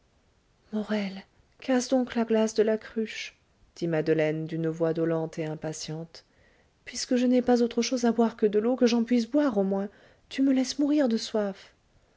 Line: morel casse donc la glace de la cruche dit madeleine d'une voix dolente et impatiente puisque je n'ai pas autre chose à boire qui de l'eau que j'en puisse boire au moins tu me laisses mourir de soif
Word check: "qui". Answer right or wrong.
wrong